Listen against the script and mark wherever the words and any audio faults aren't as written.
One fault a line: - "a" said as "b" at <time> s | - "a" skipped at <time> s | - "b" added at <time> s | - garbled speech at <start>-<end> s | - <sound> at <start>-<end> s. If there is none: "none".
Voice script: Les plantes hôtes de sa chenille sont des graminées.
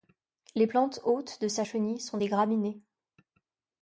none